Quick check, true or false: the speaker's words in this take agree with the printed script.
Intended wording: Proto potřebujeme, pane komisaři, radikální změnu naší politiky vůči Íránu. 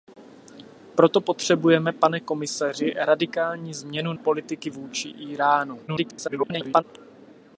false